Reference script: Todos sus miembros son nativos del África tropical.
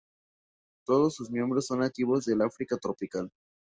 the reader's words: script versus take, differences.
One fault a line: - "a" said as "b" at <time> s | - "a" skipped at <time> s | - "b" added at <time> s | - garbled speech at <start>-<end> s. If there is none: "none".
none